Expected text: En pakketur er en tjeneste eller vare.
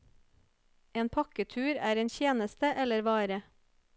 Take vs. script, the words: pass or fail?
pass